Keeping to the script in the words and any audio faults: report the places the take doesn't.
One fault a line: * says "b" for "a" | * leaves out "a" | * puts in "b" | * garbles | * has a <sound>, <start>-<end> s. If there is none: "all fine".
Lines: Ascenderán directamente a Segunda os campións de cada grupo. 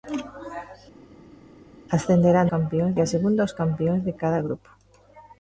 * says "campións" for "directamente"